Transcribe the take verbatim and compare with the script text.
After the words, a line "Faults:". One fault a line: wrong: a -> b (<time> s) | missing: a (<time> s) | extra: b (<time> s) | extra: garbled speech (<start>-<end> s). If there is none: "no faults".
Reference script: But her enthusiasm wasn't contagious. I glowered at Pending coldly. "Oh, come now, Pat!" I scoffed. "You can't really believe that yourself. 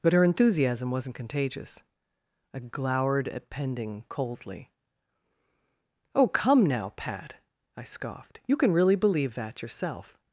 But her enthusiasm wasn't contagious. I glowered at Pending coldly. "Oh, come now, Pat!" I scoffed. "You can really believe that yourself.
Faults:
wrong: can't -> can (8.6 s)